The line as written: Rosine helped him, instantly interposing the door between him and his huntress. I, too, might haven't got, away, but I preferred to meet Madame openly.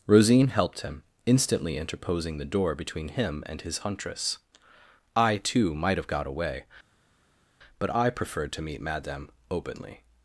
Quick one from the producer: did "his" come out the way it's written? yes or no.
yes